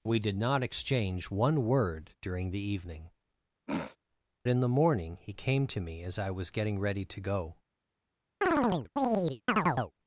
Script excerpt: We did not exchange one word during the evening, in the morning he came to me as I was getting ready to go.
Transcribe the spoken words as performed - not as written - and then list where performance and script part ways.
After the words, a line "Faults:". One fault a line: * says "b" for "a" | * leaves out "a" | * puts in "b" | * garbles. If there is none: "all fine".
We did not exchange one word during the evening, in the morning he came to me as I was getting ready to go.
Faults:
all fine